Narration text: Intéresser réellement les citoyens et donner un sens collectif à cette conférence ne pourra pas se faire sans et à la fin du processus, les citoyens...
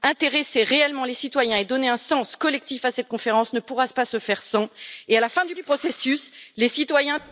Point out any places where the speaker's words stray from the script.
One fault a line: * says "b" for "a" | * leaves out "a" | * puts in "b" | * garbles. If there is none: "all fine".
* puts in "du"